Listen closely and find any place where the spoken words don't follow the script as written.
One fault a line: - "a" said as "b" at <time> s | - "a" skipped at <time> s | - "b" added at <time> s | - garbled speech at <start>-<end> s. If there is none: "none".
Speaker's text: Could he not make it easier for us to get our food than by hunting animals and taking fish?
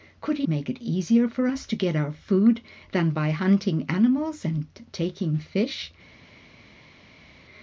- "not" skipped at 0.5 s